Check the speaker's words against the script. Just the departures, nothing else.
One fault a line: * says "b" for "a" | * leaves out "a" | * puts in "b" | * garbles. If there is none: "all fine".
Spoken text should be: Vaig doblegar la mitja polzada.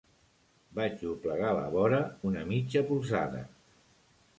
* puts in "vora una"